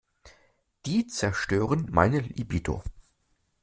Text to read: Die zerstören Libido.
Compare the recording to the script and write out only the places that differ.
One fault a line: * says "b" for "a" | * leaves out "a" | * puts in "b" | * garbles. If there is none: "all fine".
* puts in "meine"